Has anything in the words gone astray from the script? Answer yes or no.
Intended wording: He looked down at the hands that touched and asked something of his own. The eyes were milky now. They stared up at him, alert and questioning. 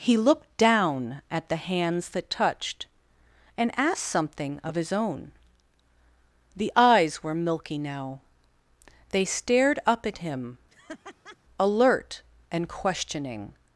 no